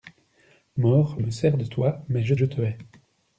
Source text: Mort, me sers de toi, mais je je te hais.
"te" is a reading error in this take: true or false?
false